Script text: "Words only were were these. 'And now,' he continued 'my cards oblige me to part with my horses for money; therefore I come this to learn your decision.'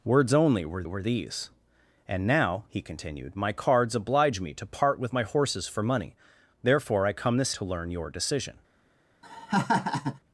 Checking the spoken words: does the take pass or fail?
pass